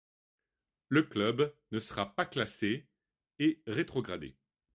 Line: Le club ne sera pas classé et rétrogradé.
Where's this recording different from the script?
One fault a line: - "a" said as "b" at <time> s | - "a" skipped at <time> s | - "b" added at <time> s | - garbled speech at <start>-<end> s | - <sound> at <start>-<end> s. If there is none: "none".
none